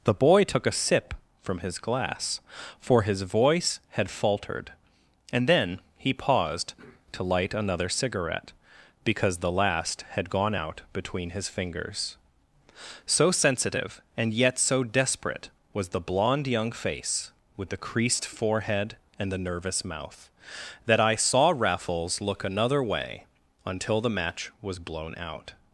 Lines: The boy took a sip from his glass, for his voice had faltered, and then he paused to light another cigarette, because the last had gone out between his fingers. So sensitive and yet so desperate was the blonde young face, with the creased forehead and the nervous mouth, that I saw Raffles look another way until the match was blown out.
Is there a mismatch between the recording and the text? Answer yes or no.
no